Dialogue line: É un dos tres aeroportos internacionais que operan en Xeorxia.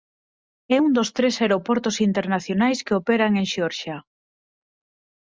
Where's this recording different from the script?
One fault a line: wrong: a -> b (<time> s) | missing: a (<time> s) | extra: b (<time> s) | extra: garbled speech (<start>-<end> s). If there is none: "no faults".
no faults